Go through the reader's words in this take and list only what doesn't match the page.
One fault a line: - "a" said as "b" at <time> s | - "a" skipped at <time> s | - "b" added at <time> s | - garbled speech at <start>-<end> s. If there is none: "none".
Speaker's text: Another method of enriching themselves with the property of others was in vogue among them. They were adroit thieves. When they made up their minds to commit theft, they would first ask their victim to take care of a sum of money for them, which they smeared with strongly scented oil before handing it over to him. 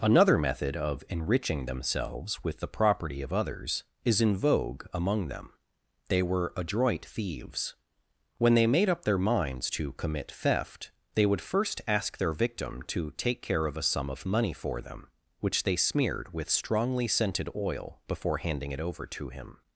- "was" said as "is" at 4.0 s